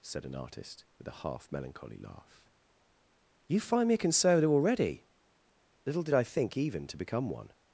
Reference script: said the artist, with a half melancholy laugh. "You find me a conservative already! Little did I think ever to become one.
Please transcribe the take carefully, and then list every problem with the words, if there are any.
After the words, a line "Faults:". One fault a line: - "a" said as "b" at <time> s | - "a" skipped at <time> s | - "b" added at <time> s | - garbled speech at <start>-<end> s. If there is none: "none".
said an artist, with a half melancholy laugh. "You find me a conservative already! Little did I think even to become one.
Faults:
- "the" said as "an" at 0.2 s
- "ever" said as "even" at 6.6 s